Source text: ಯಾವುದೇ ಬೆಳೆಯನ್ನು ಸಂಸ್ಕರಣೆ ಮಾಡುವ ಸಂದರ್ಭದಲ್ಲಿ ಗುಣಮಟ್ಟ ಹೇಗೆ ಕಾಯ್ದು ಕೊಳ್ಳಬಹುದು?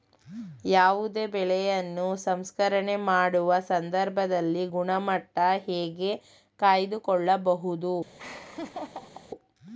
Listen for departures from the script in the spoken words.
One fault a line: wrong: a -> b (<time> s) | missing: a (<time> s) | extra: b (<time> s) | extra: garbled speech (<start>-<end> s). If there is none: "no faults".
no faults